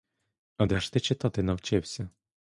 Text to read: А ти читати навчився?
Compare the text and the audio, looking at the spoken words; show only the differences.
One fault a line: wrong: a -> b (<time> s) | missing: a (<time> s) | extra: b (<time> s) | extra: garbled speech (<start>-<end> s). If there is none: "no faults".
extra: де ж (0.6 s)